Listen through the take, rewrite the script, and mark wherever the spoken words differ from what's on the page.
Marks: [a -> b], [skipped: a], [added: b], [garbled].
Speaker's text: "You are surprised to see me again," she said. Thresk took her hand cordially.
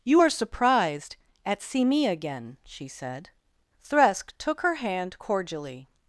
"You are surprised [to -> at] see me again," she said. Thresk took her hand cordially.